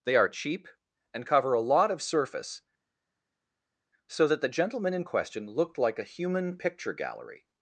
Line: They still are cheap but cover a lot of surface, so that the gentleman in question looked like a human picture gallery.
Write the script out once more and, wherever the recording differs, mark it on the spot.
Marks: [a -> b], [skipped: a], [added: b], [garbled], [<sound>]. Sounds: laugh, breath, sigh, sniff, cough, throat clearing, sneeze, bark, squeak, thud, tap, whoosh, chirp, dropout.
They [skipped: still] are cheap [but -> and] cover a lot of surface, so that the gentleman in question looked like a human picture gallery.